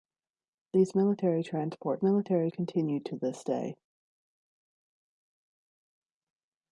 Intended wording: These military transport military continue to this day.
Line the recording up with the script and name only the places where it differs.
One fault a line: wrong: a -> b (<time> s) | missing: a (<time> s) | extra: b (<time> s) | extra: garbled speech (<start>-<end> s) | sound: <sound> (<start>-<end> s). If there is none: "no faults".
no faults